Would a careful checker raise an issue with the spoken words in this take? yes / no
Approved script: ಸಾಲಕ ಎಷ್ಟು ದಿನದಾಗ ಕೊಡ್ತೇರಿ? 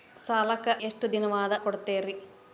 no